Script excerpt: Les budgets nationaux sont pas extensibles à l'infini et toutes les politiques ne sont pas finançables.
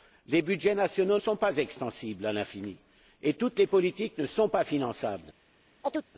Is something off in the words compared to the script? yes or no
no